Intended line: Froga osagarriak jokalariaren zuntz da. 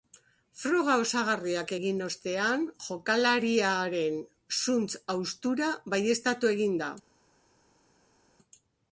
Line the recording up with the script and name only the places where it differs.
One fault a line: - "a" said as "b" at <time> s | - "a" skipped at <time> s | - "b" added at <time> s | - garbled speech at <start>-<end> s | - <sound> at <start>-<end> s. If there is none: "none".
- "egin ostean" added at 1.7 s
- "haustura baieztatu egin" added at 5.1 s